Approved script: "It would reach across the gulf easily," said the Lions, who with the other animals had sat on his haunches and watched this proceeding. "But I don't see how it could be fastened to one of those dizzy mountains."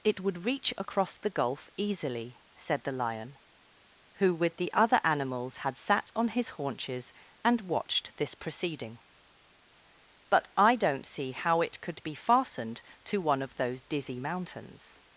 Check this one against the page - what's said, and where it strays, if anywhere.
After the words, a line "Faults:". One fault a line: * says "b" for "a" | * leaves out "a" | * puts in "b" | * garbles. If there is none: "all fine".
"It would reach across the gulf easily," said the Lion, who with the other animals had sat on his haunches and watched this proceeding. "But I don't see how it could be fastened to one of those dizzy mountains."
Faults:
* says "Lion" for "Lions"